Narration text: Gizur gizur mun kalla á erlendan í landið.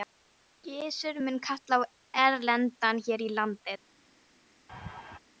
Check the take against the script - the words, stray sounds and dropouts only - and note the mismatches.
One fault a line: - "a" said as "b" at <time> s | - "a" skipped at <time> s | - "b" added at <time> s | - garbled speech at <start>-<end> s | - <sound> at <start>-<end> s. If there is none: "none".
- "gizur" skipped at 1.2 s
- "her" added at 3.1 s
- laugh at 4.7-5.2 s